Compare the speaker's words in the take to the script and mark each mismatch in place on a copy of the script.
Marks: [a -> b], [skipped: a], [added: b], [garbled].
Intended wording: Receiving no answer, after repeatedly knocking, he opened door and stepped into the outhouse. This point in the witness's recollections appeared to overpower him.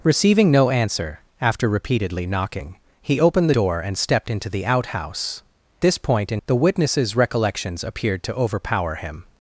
Receiving no answer, after repeatedly knocking, he opened door and stepped into the outhouse. This point in the witness's recollections appeared to overpower him.